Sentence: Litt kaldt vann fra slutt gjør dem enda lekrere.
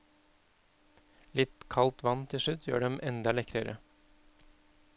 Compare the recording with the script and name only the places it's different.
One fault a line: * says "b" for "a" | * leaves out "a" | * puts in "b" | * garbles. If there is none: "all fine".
* says "til" for "fra"